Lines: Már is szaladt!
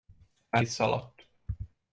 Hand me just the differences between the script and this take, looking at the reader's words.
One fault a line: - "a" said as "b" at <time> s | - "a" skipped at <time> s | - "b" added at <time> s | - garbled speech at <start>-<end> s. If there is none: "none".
none